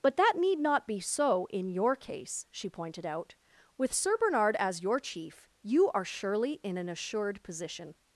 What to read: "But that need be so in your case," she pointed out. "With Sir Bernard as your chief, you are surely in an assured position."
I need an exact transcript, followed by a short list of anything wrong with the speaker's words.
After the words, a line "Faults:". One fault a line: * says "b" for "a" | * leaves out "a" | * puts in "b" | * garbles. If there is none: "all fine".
"But that need not be so in your case," she pointed out. "With Sir Bernard as your chief, you are surely in an assured position."
Faults:
* puts in "not"